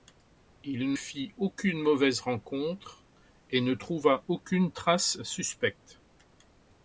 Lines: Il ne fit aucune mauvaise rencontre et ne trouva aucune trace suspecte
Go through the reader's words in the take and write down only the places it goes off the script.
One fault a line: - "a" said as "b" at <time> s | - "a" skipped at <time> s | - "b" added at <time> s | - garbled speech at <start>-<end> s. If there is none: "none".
- "ne" skipped at 0.9 s